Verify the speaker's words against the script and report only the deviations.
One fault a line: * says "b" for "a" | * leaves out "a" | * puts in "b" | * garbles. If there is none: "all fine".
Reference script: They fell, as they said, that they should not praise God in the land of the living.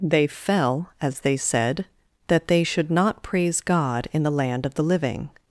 all fine